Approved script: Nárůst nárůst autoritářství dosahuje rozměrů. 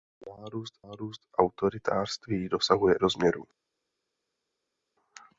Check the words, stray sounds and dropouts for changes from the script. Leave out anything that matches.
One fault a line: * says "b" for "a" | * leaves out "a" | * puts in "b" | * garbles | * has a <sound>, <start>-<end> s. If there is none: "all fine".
all fine